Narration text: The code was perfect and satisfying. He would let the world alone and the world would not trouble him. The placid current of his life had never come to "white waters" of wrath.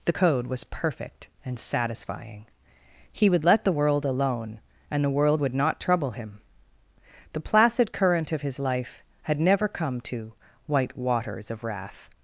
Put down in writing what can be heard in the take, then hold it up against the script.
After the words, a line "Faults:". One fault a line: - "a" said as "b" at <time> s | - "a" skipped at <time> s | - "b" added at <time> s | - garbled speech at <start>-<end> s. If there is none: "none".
The code was perfect and satisfying. He would let the world alone and the world would not trouble him. The placid current of his life had never come to "white waters" of wrath.
Faults:
none